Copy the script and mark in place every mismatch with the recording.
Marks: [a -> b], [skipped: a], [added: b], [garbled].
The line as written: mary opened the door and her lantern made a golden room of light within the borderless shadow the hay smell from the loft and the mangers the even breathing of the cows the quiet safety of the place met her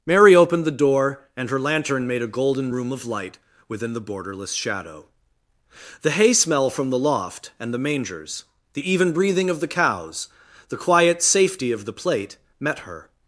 mary opened the door and her lantern made a golden room of light within the borderless shadow the hay smell from the loft and the mangers the even breathing of the cows the quiet safety of the [place -> plate] met her